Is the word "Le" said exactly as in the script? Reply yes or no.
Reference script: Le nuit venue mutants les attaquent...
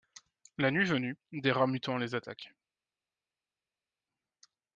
no